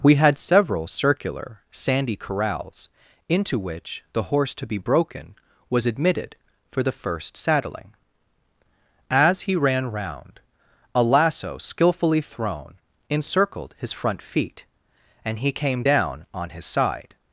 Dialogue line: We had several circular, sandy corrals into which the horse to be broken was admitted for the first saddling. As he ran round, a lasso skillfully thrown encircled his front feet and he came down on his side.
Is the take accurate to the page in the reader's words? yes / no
yes